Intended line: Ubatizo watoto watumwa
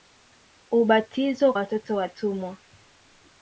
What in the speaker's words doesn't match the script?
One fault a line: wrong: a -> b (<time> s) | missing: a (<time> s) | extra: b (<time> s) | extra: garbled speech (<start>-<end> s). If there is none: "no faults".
no faults